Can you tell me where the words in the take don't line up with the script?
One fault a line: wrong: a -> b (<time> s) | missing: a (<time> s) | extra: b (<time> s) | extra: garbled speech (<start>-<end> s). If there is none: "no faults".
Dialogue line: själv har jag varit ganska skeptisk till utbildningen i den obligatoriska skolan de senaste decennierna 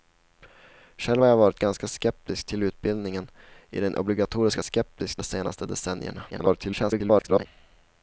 wrong: skolan -> skeptisk (4.6 s)
extra: garbled speech (6.3-7.5 s)